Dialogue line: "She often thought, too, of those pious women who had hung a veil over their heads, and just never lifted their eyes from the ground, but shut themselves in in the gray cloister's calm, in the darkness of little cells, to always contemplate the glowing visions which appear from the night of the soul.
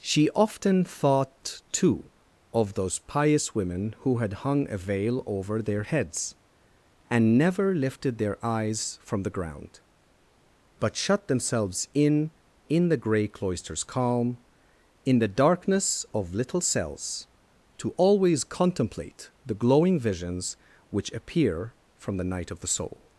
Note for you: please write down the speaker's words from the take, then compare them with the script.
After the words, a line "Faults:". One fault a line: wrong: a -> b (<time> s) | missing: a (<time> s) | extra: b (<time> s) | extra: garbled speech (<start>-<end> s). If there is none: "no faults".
"She often thought, too, of those pious women who had hung a veil over their heads, and never lifted their eyes from the ground, but shut themselves in in the gray cloister's calm, in the darkness of little cells, to always contemplate the glowing visions which appear from the night of the soul.
Faults:
missing: just (7.4 s)